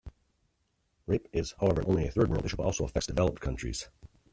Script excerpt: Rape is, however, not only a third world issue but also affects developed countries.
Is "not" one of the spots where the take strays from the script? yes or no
yes